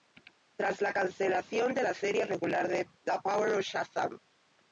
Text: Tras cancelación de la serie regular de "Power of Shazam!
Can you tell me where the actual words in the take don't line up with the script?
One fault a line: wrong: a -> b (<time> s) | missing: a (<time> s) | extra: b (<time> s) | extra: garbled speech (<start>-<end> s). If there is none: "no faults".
extra: la (0.8 s)
extra: The (3.0 s)